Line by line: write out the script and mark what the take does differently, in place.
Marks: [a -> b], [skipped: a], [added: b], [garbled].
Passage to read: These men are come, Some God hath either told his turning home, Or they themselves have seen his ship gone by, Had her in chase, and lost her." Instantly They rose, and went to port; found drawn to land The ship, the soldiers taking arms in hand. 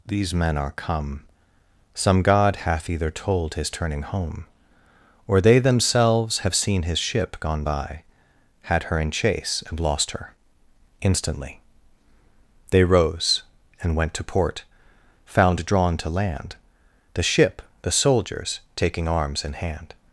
These men are come, Some God hath either told his turning home, Or they themselves have seen his ship gone by, Had her in chase, and lost her." Instantly They rose, and went to port; found drawn to land The ship, the soldiers taking arms in hand.